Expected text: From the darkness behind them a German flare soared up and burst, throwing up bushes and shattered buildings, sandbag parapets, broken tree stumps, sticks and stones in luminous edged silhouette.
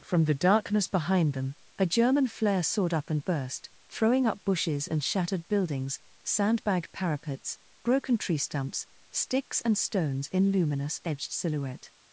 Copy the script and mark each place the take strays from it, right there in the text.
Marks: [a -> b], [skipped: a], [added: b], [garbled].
From the darkness behind them a German flare soared up and burst, throwing up bushes and shattered buildings, sandbag parapets, broken tree stumps, sticks and stones in luminous edged silhouette.